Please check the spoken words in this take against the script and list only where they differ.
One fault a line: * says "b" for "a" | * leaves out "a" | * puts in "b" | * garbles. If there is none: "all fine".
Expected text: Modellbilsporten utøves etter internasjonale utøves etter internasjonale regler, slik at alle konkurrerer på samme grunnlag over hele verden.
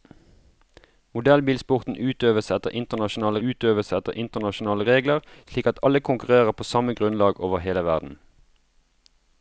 all fine